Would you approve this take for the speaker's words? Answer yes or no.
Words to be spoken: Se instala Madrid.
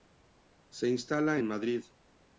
no